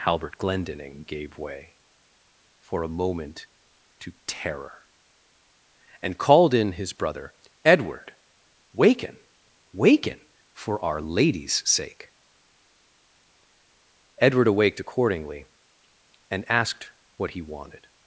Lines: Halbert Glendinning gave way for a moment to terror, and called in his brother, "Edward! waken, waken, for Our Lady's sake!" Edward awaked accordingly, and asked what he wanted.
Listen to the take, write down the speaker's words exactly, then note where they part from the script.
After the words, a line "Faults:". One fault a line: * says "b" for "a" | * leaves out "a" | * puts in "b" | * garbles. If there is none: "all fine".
Halbert Glendinning gave way for a moment to terror, and called in his brother, "Edward! waken, waken, for Our Lady's sake!" Edward awaked accordingly, and asked what he wanted.
Faults:
all fine